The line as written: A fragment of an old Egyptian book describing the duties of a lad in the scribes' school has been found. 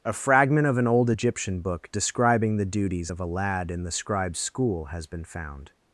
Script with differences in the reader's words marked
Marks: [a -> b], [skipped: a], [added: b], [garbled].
A fragment of an old Egyptian book describing the duties of a lad in the scribes' school has been found.